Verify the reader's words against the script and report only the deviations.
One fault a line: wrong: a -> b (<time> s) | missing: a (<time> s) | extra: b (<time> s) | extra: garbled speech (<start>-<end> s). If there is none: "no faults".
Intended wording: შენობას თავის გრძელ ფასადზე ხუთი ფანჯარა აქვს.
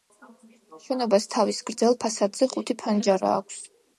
no faults